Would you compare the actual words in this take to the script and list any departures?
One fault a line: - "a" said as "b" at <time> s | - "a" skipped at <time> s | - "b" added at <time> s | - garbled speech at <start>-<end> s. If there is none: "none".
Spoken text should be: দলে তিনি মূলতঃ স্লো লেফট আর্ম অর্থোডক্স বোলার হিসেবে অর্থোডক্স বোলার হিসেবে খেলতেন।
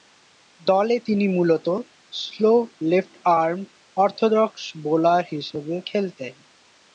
- "অর্থোডক্স বোলার হিসেবে" skipped at 5.7 s